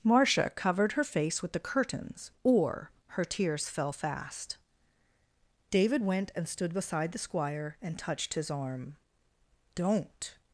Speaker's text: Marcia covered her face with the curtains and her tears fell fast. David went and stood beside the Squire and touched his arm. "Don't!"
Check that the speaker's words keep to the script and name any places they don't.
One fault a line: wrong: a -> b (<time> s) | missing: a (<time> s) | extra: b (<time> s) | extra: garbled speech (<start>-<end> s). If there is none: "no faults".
wrong: and -> or (2.4 s)